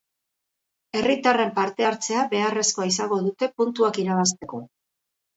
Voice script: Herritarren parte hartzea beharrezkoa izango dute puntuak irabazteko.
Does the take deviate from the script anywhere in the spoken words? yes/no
no